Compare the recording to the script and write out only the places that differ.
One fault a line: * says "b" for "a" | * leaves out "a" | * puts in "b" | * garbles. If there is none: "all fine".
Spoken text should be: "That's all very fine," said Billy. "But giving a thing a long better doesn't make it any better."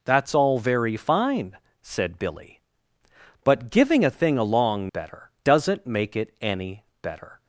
all fine